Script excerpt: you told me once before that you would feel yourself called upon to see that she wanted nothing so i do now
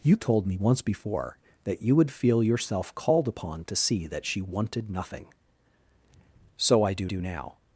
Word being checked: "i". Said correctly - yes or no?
yes